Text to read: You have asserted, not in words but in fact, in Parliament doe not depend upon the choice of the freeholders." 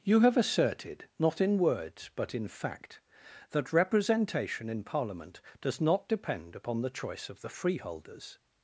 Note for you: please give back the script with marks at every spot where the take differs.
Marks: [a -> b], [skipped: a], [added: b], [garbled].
You have asserted, not in words but in fact, [added: that representation] in Parliament [doe -> does] not depend upon the choice of the freeholders."